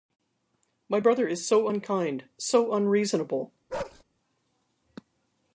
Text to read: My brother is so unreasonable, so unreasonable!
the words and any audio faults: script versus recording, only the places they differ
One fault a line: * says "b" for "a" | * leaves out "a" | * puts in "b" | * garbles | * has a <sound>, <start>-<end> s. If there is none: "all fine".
* says "unkind" for "unreasonable"
* has a bark, 3.7-4.0 s